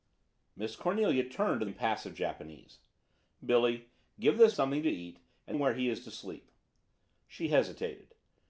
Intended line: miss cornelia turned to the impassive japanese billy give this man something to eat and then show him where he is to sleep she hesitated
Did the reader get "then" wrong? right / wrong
wrong